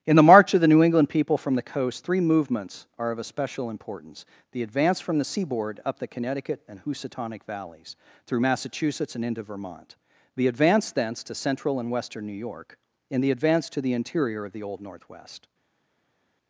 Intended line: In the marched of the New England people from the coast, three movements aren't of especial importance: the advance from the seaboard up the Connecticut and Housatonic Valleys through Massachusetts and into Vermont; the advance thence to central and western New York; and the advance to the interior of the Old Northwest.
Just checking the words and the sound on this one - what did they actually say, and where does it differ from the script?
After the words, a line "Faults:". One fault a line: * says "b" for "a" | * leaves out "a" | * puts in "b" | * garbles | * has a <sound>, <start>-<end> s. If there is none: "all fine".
In the march of the New England people from the coast, three movements are of especial importance: the advance from the seaboard up the Connecticut and Housatonic Valleys through Massachusetts and into Vermont; the advance thence to central and western New York; and the advance to the interior of the Old Northwest.
Faults:
* says "march" for "marched"
* says "are" for "aren't"